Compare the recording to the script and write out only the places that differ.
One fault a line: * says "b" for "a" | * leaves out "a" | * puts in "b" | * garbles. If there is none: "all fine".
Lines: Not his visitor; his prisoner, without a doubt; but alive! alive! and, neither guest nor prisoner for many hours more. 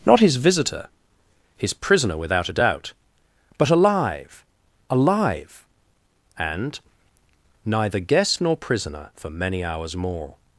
all fine